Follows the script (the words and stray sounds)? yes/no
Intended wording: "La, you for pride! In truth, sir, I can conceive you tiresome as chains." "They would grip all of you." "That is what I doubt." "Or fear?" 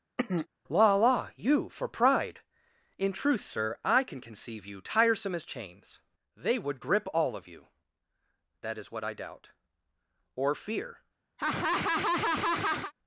no